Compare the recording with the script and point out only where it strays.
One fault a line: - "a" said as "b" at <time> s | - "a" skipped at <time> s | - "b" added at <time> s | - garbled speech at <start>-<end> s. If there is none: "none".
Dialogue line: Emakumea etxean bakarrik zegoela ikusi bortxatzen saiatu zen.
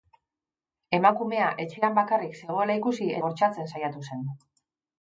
none